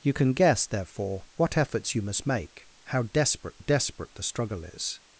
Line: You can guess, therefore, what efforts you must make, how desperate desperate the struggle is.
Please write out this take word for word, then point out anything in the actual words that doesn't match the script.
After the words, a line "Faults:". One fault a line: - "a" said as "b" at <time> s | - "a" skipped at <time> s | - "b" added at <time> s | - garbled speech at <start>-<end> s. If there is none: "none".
You can guess, therefore, what efforts you must make, how desperate desperate the struggle is.
Faults:
none